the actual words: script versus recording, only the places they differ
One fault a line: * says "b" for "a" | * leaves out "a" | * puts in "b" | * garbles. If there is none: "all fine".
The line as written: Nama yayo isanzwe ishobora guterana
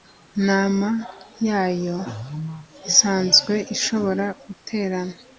all fine